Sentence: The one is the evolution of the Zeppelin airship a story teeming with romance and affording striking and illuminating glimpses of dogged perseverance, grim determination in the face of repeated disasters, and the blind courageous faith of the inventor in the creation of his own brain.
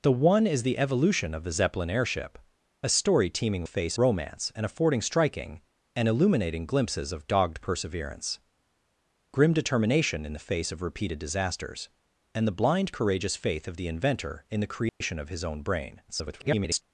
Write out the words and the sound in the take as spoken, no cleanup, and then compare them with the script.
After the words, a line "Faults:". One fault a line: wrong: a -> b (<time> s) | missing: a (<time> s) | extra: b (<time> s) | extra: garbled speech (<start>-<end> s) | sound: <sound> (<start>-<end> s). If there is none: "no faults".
The one is the evolution of the Zeppelin airship a story teeming face romance and affording striking and illuminating glimpses of dogged perseverance, grim determination in the face of repeated disasters, and the blind courageous faith of the inventor in the creation of his own brain. [garbled]
Faults:
wrong: with -> face (3.6 s)
sound: dropout (14.9-15.0 s)
extra: garbled speech (16.1-16.8 s)